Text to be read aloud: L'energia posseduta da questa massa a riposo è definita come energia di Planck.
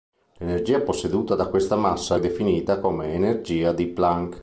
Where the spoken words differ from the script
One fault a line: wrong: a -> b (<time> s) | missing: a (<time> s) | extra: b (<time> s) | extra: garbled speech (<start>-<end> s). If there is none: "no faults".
missing: riposo (2.2 s)